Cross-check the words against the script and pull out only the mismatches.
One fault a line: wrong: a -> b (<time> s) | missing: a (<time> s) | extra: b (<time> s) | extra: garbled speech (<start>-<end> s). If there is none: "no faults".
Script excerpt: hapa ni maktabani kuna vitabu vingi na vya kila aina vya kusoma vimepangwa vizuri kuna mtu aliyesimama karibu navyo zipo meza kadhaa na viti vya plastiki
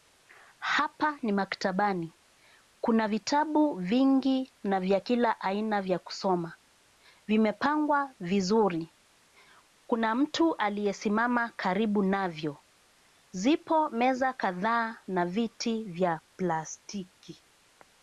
no faults